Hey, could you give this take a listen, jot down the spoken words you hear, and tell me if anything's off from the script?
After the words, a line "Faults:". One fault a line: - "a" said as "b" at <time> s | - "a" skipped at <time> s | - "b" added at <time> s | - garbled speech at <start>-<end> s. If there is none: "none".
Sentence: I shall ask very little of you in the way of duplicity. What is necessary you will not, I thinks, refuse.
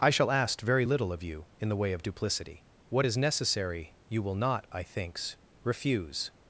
I shall ask very little of you in the way of duplicity. What is necessary you will not, I thinks, refuse.
Faults:
none